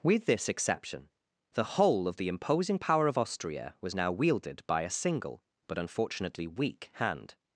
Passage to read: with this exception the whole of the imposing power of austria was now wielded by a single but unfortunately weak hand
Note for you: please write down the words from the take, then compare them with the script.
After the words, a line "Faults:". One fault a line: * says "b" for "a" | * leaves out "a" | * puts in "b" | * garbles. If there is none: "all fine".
with this exception the whole of the imposing power of austria was now wielded by a single but unfortunately weak hand
Faults:
all fine